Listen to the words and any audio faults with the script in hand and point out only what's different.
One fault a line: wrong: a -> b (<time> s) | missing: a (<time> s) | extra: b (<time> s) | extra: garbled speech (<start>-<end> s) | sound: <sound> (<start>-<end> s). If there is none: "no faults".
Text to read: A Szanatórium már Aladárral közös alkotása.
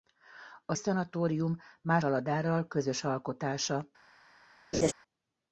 sound: laugh (4.7-4.9 s)